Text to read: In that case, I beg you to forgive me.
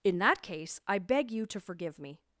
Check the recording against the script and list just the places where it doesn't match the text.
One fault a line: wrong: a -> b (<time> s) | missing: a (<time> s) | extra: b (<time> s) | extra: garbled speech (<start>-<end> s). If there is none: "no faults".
no faults